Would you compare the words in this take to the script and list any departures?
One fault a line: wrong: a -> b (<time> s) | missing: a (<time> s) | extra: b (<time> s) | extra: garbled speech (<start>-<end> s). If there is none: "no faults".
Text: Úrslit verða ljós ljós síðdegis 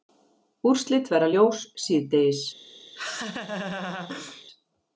missing: ljós (1.7 s)